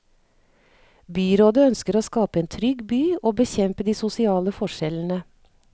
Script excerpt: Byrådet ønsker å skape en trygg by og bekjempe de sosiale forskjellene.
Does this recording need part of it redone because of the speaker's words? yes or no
no